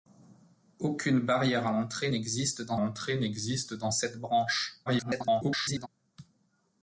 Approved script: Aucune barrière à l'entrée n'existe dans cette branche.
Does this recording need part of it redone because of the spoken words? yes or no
yes